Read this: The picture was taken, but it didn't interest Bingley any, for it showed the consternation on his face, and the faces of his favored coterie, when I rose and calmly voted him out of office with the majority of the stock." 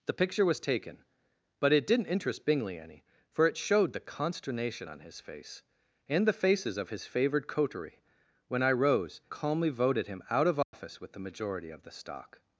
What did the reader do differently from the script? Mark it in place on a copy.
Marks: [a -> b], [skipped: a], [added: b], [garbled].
The picture was taken, but it didn't interest Bingley any, for it showed the consternation on his face, and the faces of his favored coterie, when I rose [skipped: and] calmly voted him out of office with the majority of the stock."